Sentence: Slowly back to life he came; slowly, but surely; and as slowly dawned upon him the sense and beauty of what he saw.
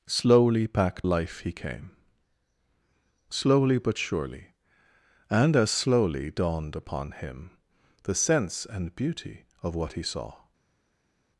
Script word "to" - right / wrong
wrong